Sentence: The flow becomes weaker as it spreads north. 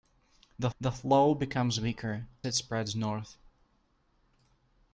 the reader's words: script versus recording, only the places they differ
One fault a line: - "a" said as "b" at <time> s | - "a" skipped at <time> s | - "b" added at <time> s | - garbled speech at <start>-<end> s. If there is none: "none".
- "the" added at 0.8 s
- "as" skipped at 2.3 s